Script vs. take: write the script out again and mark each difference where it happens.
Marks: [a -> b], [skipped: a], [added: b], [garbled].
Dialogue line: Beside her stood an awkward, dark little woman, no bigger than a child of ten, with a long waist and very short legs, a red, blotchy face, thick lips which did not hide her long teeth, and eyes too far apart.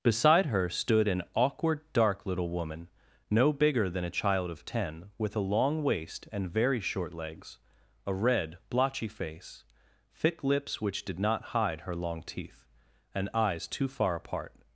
Beside her stood an awkward, dark little woman, no bigger than a child of ten, with a long waist and very short legs, a red, blotchy face, thick lips which did not hide her long teeth, and eyes too far apart.